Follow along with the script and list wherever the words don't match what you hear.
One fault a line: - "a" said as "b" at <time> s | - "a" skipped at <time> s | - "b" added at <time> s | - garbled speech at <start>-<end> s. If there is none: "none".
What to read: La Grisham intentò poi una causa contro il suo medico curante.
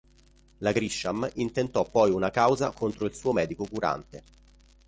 none